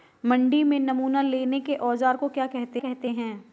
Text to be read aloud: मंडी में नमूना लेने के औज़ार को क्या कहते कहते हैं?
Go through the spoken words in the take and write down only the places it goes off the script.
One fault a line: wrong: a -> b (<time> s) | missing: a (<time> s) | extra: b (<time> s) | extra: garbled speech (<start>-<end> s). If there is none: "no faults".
no faults